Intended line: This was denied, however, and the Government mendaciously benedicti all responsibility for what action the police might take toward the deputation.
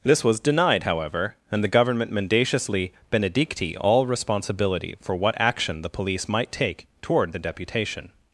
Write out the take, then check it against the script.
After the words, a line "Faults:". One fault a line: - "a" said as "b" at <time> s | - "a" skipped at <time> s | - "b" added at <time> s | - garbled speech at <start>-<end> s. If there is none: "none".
This was denied, however, and the Government mendaciously benedicti all responsibility for what action the police might take toward the deputation.
Faults:
none